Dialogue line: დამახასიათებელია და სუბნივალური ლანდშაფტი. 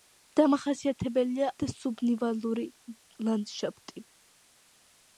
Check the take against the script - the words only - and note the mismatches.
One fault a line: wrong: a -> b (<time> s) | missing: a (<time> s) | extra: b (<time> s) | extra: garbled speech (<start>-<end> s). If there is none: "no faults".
no faults